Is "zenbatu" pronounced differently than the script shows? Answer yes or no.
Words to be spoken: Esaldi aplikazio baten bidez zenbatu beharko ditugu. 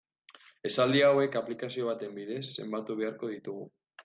no